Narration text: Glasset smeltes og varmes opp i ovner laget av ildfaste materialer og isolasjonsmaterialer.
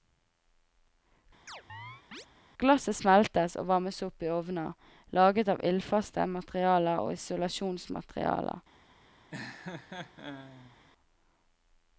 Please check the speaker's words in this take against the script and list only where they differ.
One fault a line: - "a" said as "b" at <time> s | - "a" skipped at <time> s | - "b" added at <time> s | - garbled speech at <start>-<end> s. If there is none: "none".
none